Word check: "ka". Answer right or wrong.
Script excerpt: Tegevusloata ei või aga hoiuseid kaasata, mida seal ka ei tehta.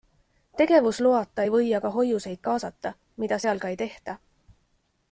right